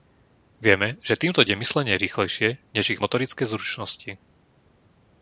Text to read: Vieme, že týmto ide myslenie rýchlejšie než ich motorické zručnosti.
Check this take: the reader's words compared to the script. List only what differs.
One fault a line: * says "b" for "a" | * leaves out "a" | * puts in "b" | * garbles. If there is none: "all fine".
all fine